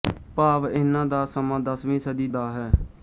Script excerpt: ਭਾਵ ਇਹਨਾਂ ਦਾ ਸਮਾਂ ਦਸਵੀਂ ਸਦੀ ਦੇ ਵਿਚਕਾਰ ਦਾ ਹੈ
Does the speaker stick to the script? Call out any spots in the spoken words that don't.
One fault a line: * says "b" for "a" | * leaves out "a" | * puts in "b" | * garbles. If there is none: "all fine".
* leaves out "ਦੇ ਵਿਚਕਾਰ"